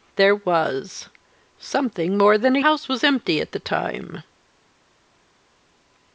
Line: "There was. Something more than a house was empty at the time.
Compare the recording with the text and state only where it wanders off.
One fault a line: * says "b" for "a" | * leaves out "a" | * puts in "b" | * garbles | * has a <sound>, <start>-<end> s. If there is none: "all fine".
all fine